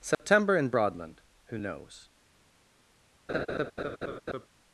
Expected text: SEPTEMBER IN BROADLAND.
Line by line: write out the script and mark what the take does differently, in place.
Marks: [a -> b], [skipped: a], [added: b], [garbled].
SEPTEMBER IN BROADLAND. [added: who knows]